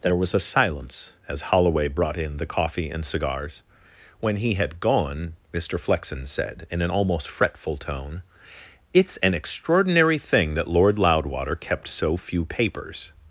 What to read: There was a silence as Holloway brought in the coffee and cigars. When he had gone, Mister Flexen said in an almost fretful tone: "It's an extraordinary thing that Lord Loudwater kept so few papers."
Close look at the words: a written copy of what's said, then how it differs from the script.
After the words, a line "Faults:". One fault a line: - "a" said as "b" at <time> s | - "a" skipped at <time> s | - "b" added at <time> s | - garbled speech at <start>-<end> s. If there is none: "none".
There was a silence as Holloway brought in the coffee and cigars. When he had gone, Mister Flexen said in an almost fretful tone: "It's an extraordinary thing that Lord Loudwater kept so few papers."
Faults:
none